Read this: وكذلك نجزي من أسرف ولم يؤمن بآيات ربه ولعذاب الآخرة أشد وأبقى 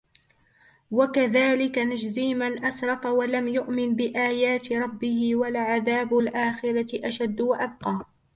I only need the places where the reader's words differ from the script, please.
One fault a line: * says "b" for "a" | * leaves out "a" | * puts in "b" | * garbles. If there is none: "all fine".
all fine